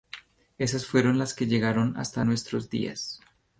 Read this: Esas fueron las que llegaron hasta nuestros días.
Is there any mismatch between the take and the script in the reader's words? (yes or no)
no